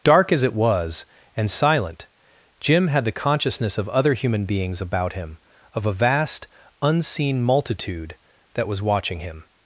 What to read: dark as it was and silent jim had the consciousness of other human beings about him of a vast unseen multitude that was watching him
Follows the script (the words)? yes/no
yes